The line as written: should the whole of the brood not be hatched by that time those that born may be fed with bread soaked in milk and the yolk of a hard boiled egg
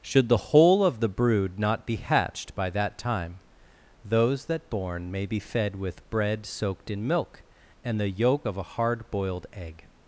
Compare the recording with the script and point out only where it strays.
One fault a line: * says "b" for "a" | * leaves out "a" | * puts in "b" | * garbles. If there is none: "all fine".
all fine